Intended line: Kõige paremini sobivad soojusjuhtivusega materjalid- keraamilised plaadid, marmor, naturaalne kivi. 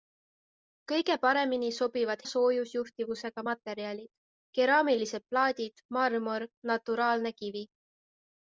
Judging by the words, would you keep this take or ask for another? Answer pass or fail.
pass